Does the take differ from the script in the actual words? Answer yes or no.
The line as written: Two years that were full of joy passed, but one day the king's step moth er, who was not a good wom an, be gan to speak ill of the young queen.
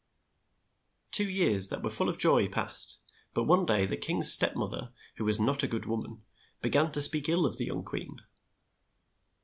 no